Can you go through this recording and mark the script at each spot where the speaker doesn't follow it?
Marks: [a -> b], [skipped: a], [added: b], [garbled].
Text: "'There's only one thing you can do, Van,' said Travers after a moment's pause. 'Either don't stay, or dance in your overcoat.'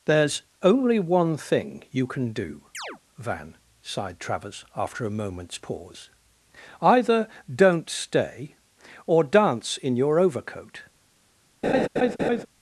"'There's only one thing you can do, Van,' [said -> sighed] Travers after a moment's pause. 'Either don't stay, or dance in your overcoat.'